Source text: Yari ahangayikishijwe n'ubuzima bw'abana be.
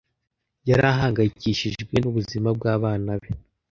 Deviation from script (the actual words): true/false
false